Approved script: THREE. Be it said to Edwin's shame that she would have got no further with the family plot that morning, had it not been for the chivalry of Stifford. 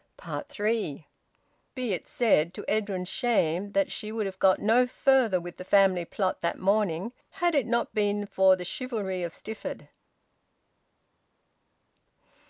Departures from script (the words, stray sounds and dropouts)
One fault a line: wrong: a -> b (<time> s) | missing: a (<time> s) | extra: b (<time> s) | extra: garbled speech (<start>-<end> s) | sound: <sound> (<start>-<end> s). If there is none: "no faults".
no faults